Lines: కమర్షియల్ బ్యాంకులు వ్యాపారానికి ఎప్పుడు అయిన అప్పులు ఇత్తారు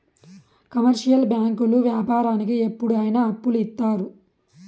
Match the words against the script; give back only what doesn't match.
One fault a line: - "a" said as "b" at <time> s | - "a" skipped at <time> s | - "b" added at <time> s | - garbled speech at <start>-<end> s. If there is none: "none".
none